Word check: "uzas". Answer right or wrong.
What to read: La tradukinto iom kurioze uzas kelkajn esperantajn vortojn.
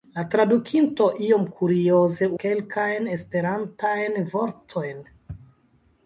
wrong